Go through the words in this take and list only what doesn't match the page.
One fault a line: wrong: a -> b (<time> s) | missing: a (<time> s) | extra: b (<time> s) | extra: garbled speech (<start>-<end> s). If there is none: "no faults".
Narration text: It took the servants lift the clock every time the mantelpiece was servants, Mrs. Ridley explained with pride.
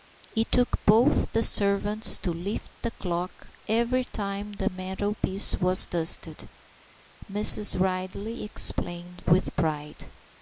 extra: both (0.8 s)
extra: to (2.2 s)
wrong: servants -> dusted (5.9 s)